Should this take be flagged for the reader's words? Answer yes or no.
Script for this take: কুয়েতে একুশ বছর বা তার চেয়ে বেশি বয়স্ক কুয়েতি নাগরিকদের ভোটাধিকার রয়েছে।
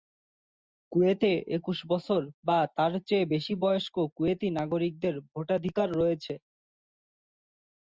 no